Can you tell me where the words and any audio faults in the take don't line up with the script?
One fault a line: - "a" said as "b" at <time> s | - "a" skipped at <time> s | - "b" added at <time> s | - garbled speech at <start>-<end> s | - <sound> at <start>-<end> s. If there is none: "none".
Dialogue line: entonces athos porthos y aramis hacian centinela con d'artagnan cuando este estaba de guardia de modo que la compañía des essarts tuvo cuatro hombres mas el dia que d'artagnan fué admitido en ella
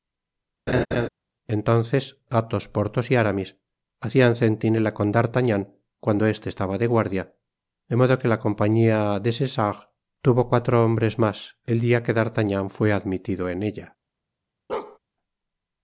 - laugh at 0.7-1.1 s
- bark at 14.7-15.0 s